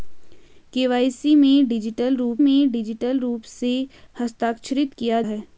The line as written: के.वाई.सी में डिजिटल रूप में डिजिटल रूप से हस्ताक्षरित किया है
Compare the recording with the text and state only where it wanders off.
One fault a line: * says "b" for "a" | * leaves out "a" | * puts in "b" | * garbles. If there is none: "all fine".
all fine